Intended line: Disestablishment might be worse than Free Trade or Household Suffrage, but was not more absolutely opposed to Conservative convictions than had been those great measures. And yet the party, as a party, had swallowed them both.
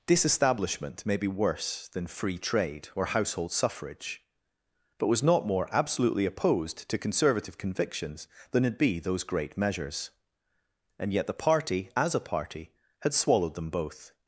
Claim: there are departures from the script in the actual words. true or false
true